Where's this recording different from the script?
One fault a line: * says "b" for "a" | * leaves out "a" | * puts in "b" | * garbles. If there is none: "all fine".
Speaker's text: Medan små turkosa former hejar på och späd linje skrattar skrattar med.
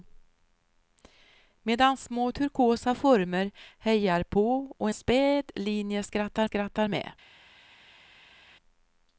all fine